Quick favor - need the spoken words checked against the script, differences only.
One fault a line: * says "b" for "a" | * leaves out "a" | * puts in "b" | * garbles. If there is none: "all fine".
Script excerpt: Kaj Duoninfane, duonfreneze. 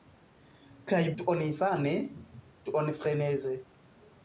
all fine